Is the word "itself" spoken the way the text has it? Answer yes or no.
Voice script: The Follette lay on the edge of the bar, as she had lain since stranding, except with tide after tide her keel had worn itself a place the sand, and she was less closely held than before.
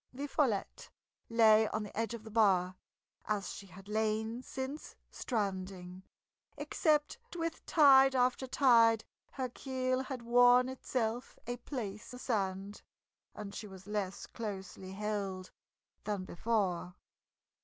yes